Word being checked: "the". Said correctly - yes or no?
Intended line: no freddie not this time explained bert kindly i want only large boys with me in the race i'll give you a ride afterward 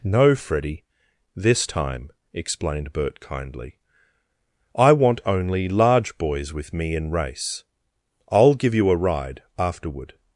no